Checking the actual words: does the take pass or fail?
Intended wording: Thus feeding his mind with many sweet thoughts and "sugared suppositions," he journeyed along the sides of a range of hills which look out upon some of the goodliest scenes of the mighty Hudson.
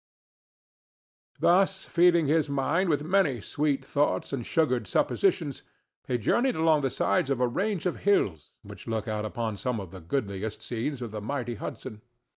pass